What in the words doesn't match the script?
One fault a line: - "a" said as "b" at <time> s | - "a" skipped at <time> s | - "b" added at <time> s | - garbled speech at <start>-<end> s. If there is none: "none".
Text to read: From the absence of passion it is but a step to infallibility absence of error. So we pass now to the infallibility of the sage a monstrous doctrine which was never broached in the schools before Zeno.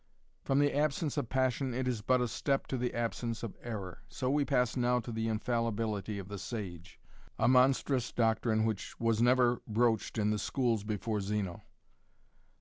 - "infallibility" said as "the" at 2.8 s